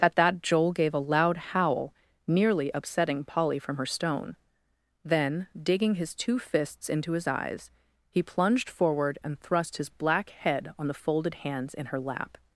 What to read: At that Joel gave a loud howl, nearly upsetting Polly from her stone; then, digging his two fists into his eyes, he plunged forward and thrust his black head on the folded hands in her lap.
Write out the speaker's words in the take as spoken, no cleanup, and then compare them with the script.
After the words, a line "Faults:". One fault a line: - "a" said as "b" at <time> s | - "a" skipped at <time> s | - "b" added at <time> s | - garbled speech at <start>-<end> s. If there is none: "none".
At that Joel gave a loud howl, nearly upsetting Polly from her stone; then, digging his two fists into his eyes, he plunged forward and thrust his black head on the folded hands in her lap.
Faults:
none